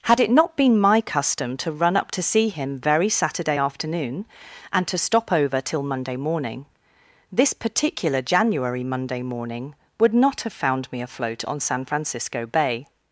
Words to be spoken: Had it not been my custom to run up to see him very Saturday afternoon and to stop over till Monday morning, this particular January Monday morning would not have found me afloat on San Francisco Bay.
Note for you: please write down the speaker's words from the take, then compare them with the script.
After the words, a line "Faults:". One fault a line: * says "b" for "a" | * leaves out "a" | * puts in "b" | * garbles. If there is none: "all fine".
Had it not been my custom to run up to see him very Saturday afternoon and to stop over till Monday morning, this particular January Monday morning would not have found me afloat on San Francisco Bay.
Faults:
all fine